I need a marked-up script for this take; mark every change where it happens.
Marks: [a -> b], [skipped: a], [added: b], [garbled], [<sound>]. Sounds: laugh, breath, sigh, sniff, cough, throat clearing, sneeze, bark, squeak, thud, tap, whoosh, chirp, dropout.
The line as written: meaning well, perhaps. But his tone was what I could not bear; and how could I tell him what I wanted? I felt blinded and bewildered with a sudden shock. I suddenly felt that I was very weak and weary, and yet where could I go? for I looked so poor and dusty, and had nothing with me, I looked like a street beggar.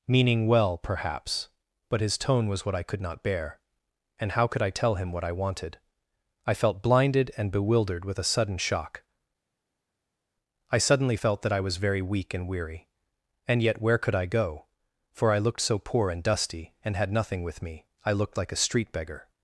meaning well, perhaps. But his tone was what I could not bear; and how could I tell him what I wanted? I felt blinded and bewildered with a sudden shock. I suddenly felt that I was very weak and weary, and yet where could I go? for I looked so poor and dusty, and had nothing with me, I looked like a street beggar.